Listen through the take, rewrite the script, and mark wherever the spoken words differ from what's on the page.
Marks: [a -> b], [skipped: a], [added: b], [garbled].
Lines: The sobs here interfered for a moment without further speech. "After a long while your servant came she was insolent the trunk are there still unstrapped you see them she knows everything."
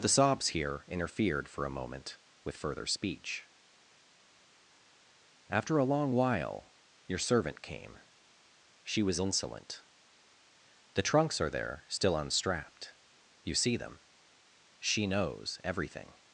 The sobs here interfered for a moment [without -> with] further speech. "After a long while your servant came she was insolent the [trunk -> trunks] are there still unstrapped you see them she knows everything."